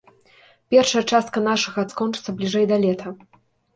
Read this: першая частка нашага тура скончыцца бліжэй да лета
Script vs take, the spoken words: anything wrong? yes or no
yes